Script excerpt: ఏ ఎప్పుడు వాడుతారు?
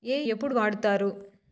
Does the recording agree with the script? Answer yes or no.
yes